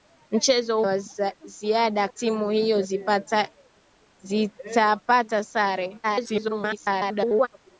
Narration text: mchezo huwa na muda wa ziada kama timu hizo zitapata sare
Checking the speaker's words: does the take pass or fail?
fail